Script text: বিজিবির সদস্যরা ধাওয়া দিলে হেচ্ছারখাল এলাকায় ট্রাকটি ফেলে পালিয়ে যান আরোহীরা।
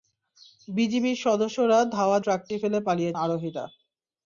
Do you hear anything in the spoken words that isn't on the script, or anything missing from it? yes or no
yes